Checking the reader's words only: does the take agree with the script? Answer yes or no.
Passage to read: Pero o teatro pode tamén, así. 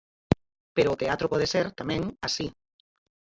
no